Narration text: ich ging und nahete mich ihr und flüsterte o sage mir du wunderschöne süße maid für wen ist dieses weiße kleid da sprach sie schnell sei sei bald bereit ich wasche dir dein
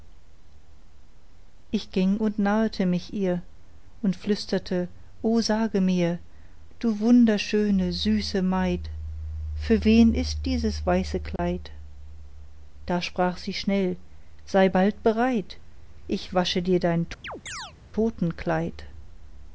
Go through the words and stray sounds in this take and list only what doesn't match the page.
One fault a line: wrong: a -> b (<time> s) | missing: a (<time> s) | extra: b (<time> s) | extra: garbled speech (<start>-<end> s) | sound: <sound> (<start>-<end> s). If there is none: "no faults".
sound: dropout (11.4-11.4 s)
missing: sei (14.7 s)
sound: chirp (17.2-17.7 s)